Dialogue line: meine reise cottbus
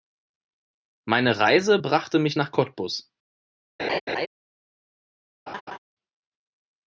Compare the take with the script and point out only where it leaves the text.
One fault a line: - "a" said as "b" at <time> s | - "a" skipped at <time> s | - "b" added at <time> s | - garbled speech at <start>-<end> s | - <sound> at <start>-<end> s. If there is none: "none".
- "brachte mich nach" added at 1.7 s
- laugh at 3.8-4.3 s
- laugh at 5.5-5.8 s